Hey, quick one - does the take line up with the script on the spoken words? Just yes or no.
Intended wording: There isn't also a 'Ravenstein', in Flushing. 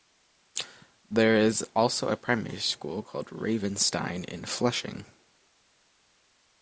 no